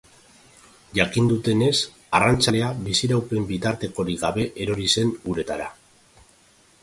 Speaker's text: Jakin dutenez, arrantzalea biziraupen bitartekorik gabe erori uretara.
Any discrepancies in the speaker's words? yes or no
yes